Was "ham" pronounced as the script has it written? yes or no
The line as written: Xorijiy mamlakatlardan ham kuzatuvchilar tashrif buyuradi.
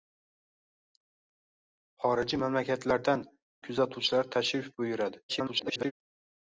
no